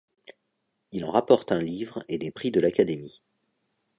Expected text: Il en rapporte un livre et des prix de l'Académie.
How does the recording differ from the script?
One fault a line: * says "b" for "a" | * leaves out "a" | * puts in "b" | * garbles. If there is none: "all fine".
all fine